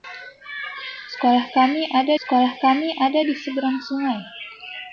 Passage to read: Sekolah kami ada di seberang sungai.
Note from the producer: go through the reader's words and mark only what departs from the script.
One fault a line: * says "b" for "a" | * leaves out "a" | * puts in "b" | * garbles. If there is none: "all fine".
* puts in "sekolah kami ada"